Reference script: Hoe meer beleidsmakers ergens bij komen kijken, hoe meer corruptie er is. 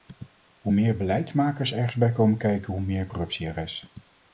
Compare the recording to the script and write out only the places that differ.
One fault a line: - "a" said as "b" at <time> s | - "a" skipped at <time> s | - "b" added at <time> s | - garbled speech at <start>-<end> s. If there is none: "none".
none